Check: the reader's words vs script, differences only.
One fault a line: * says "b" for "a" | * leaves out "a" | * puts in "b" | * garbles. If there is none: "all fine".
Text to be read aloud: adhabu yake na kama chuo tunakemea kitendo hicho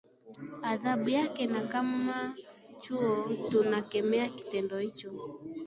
all fine